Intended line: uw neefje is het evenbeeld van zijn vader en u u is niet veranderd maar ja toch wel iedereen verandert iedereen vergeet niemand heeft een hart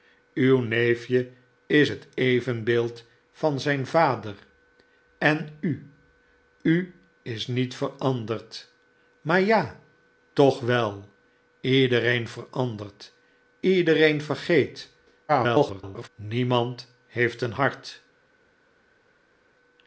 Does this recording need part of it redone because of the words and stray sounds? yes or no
yes